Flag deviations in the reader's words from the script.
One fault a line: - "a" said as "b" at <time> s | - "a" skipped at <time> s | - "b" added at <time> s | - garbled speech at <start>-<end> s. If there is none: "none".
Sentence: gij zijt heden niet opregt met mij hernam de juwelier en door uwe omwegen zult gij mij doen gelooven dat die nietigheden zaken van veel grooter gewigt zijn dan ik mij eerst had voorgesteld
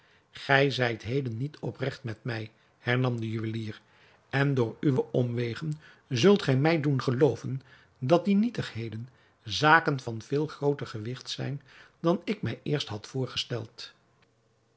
none